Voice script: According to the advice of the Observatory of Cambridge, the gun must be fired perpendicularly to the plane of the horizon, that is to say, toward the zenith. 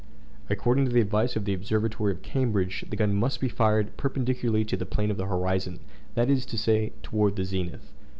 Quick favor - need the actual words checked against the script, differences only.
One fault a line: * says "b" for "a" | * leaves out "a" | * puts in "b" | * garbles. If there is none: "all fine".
all fine